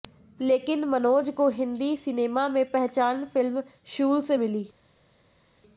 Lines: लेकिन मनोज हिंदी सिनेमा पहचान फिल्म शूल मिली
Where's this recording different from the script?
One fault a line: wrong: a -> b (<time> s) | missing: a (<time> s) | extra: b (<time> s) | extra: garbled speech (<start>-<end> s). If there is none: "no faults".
extra: को (1.3 s)
extra: में (2.5 s)
extra: से (4.2 s)